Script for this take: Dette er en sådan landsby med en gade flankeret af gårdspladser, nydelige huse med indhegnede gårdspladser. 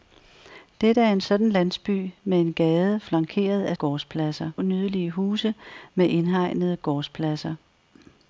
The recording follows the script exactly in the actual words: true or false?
true